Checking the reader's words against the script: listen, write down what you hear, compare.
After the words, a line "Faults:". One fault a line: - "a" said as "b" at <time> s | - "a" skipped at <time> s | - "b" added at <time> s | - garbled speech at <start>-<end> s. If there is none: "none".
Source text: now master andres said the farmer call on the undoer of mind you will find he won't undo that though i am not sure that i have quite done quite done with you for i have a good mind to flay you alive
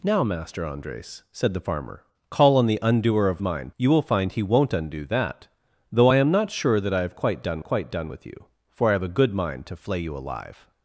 now master andres said the farmer call on the undoer of mind you will find he won't undo that though i am not sure that i have quite done quite done with you for i have a good mind to flay you alive
Faults:
none